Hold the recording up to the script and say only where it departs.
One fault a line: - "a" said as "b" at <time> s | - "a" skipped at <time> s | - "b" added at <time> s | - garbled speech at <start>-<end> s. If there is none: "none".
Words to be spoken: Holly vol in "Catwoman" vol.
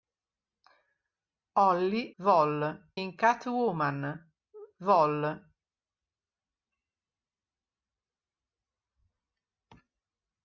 none